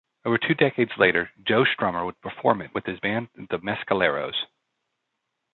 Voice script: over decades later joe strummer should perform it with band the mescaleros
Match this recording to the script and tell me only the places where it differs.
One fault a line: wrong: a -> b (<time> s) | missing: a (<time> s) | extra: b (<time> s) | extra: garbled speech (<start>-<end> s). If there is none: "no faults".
extra: two (0.4 s)
wrong: should -> would (2.0 s)
extra: his (2.9 s)